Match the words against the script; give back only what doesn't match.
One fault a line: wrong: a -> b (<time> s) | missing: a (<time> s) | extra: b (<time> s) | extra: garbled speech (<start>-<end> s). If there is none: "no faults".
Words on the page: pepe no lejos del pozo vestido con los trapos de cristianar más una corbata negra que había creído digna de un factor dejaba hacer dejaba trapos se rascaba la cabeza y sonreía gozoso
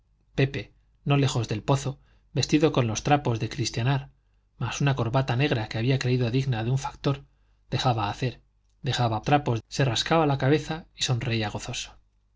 no faults